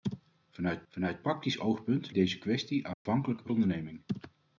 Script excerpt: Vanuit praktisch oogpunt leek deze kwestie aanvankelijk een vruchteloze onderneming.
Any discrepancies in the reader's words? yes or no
yes